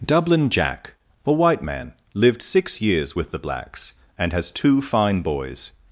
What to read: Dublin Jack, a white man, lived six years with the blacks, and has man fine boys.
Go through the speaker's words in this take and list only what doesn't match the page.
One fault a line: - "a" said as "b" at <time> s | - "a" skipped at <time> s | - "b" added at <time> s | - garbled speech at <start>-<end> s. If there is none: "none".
- "man" said as "two" at 4.5 s